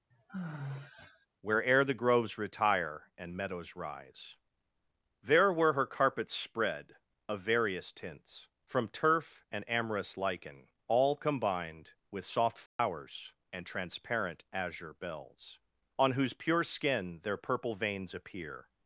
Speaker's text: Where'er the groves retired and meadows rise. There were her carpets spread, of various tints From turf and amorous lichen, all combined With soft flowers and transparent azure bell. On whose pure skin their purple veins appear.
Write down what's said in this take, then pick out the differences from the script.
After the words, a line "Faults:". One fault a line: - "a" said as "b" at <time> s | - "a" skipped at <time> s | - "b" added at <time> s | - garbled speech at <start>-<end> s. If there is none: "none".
Where'er the groves retire and meadows rise. There were her carpets spread, of various tints From turf and amorous lichen, all combined With soft flowers and transparent azure bells. On whose pure skin their purple veins appear.
Faults:
- "retired" said as "retire" at 2.4 s
- "bell" said as "bells" at 14.9 s